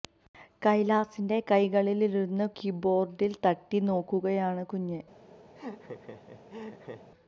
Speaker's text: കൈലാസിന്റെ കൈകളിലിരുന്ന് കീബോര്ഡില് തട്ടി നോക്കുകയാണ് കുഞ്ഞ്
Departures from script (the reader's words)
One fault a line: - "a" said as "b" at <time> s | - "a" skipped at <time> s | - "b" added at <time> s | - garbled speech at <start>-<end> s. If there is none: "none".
none